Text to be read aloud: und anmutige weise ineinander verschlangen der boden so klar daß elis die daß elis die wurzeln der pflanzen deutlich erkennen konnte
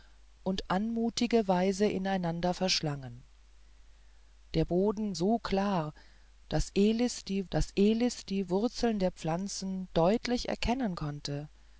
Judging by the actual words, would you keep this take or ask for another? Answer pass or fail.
pass